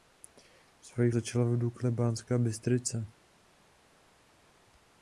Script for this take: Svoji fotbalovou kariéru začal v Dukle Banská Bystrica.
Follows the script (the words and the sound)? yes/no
no